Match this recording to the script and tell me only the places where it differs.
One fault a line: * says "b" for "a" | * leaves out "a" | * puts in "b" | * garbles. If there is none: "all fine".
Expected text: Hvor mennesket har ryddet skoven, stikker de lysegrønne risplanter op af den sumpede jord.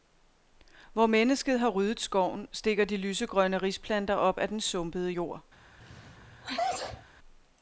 all fine